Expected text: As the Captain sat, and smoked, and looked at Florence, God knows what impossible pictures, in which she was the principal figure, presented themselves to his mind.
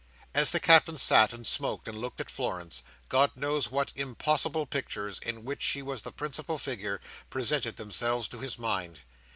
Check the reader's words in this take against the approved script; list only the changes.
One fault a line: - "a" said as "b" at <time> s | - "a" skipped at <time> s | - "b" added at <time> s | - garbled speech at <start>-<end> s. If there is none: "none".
none